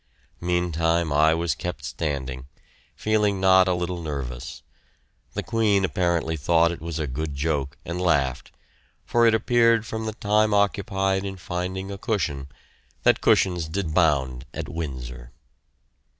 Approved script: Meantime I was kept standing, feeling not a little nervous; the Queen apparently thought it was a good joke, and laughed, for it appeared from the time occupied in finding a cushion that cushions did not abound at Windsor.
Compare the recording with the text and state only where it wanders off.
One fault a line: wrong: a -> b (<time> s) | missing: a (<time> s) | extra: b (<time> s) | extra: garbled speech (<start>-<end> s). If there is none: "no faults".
missing: not (13.9 s)